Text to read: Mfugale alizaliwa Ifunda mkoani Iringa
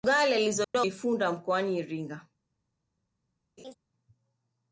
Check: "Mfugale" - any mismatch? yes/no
no